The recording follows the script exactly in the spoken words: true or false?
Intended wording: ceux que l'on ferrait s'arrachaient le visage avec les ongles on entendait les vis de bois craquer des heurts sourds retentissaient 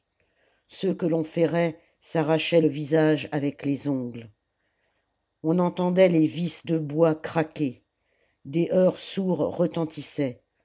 true